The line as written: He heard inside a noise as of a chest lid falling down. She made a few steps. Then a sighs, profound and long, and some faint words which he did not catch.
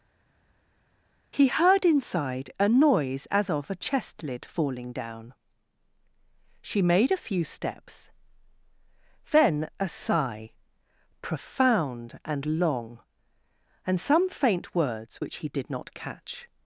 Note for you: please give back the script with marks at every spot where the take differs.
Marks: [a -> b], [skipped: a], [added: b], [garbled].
He heard inside a noise as of a chest lid falling down. She made a few steps. Then a [sighs, -> sigh] profound and long, and some faint words which he did not catch.